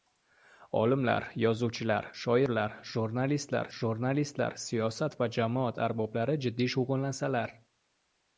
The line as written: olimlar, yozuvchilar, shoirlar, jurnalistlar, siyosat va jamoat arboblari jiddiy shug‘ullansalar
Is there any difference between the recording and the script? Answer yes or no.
yes